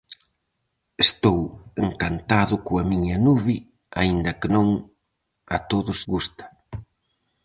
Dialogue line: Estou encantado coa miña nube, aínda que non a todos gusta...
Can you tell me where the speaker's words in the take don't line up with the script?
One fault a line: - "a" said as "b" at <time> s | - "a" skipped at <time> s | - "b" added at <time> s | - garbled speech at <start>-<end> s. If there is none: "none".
none